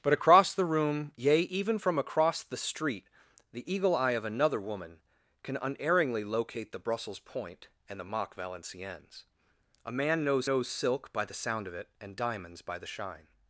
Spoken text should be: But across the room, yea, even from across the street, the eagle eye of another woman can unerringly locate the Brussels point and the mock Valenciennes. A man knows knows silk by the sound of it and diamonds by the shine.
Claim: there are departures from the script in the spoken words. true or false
false